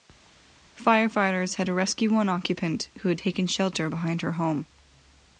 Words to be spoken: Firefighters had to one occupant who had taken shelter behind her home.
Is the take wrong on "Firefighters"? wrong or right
right